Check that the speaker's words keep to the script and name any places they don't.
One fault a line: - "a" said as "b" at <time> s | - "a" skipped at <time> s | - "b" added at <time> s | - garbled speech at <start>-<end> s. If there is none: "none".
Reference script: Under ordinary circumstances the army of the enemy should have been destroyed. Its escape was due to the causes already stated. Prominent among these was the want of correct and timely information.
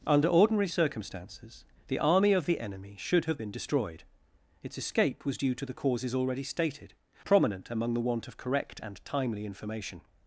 - "these was" skipped at 7.9 s